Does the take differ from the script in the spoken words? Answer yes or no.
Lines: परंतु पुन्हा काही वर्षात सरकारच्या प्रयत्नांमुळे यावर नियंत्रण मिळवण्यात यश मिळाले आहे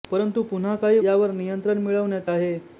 yes